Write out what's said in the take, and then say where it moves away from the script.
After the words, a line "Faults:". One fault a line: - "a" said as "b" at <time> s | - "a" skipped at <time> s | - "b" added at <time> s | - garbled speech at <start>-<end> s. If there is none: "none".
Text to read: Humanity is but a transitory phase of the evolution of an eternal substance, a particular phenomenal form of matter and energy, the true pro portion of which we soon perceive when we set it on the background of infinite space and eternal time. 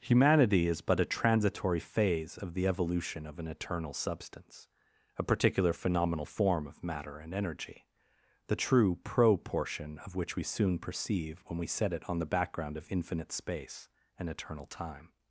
Humanity is but a transitory phase of the evolution of an eternal substance, a particular phenomenal form of matter and energy, the true pro portion of which we soon perceive when we set it on the background of infinite space and eternal time.
Faults:
none